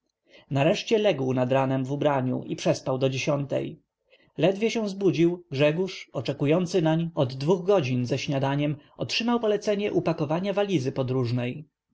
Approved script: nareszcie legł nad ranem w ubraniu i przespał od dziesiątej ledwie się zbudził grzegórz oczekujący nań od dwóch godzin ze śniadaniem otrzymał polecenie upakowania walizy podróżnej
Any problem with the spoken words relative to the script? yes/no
yes